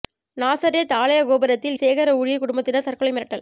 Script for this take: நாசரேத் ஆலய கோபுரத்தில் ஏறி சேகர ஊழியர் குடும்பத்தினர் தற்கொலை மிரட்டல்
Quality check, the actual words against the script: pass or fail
fail